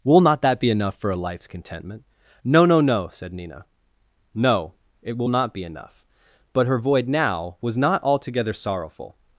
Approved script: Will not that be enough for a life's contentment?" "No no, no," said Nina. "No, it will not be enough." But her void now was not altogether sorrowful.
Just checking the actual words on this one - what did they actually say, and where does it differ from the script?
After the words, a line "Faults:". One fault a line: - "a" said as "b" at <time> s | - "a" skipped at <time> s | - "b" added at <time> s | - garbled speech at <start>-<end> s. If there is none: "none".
Will not that be enough for a life's contentment?" "No no, no," said Nina. "No, it will not be enough." But her void now was not altogether sorrowful.
Faults:
none